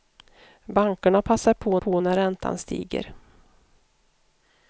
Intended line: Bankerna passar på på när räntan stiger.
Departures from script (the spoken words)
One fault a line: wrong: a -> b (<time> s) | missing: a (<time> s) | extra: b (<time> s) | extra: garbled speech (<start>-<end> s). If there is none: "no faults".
no faults